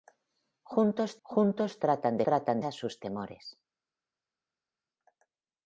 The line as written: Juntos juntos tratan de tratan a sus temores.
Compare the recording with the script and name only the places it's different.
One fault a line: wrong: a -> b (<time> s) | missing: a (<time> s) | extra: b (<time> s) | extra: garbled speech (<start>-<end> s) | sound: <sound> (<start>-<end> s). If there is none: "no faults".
no faults